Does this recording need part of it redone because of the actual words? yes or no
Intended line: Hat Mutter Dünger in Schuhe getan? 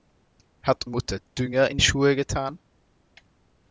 no